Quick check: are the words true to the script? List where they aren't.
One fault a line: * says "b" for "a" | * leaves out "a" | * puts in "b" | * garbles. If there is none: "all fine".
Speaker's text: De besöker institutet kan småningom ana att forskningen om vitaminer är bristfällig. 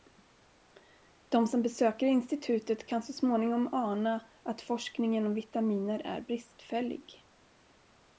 * puts in "som"
* puts in "så"